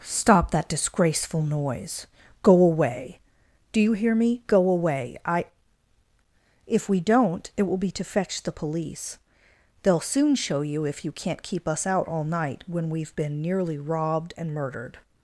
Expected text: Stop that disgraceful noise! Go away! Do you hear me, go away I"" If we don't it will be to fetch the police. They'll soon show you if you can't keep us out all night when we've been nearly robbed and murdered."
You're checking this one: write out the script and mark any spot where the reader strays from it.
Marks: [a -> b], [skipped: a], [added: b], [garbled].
Stop that disgraceful noise! Go away! Do you hear me, go away I"" If we don't it will be to fetch the police. They'll soon show you if you can't keep us out all night when we've been nearly robbed and murdered."